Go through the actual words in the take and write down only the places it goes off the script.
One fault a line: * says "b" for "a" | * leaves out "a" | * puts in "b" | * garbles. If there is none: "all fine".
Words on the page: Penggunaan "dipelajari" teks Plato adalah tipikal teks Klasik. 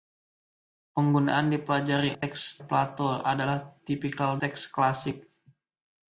all fine